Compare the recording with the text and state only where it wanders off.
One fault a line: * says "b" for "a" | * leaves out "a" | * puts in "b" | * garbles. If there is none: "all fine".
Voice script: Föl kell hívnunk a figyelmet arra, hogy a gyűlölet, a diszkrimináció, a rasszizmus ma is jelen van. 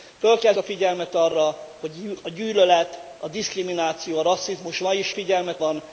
* leaves out "hívnunk"
* says "figyelmet" for "jelen"